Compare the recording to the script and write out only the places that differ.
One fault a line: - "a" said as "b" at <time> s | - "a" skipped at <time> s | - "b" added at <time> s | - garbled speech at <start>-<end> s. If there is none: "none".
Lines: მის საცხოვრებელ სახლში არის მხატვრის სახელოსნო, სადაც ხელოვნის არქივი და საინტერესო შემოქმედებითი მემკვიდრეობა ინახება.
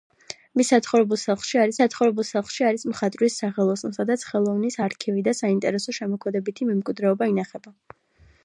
- "საცხოვრებელ სახლში არის" added at 1.8 s